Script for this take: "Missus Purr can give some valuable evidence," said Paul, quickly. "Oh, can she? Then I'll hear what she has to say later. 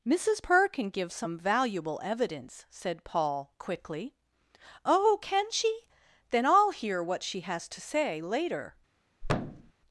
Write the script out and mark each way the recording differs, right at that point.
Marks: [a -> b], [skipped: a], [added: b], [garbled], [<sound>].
"Missus Purr can give some valuable evidence," said Paul, quickly. "Oh, can she? Then I'll hear what she has to say later. [thud]